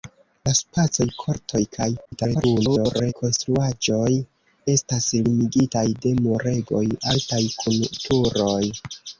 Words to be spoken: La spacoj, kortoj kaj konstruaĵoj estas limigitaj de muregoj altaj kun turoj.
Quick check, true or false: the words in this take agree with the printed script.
false